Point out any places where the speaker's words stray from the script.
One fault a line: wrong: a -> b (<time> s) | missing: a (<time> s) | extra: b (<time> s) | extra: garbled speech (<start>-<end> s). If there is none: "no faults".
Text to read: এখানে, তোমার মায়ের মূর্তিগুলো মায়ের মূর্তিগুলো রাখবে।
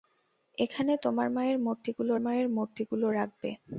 no faults